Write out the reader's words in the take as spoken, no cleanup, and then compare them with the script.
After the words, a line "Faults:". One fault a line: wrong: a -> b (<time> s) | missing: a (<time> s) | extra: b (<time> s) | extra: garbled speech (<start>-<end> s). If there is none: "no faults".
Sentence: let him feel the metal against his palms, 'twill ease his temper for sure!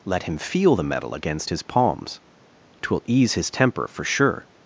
let him feel the metal against his palms, 'twill ease his temper for sure!
Faults:
no faults